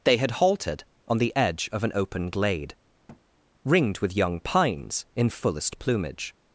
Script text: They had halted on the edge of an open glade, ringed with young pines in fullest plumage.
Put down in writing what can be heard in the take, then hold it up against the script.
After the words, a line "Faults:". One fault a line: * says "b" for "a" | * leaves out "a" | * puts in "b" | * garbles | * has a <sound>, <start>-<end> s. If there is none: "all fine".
They had halted on the edge of an open glade, ringed with young pines in fullest plumage.
Faults:
* has a thud, 3.1-3.2 s